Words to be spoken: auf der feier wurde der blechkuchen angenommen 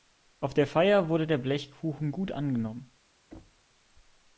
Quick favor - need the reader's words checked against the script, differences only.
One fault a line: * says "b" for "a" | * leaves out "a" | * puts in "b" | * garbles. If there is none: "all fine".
* puts in "gut"